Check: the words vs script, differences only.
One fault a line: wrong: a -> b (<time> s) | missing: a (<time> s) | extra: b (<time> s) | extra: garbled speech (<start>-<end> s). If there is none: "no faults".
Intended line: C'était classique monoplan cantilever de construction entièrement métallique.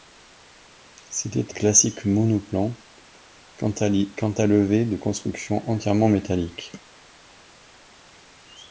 no faults